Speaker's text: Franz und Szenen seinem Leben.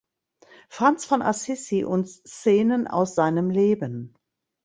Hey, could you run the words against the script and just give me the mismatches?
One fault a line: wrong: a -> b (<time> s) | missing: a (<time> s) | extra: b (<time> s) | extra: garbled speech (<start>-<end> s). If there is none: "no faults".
extra: von Assisi (1.1 s)
extra: aus (2.9 s)